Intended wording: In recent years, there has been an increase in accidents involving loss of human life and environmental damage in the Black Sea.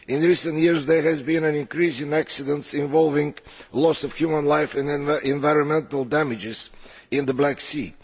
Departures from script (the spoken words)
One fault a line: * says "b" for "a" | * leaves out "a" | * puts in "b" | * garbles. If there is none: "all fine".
all fine